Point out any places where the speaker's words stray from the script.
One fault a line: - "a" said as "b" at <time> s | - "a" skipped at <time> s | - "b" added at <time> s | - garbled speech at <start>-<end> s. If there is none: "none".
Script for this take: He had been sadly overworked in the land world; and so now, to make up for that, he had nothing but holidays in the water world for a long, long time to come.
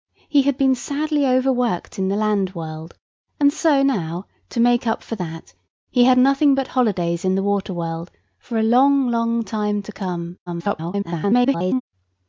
- garbled speech at 10.5-11.8 s